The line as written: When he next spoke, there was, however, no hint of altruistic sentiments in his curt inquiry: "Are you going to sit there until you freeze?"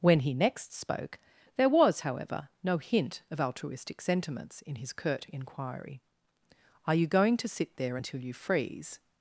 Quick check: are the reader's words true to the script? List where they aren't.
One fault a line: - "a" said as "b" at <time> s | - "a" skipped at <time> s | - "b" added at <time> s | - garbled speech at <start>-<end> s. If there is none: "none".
none